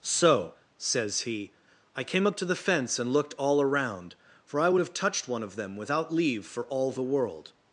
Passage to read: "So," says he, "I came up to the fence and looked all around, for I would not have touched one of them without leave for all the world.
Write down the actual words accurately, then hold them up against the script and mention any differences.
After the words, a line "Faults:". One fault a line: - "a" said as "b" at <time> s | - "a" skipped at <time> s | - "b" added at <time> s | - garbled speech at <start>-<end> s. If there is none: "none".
"So," says he, "I came up to the fence and looked all around, for I would have touched one of them without leave for all the world.
Faults:
- "not" skipped at 4.8 s